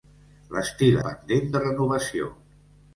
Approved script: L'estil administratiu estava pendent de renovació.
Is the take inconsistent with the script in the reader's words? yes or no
yes